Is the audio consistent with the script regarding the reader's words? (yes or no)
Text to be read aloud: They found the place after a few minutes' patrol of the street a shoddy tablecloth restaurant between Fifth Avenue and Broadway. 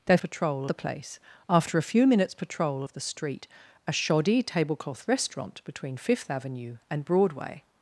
no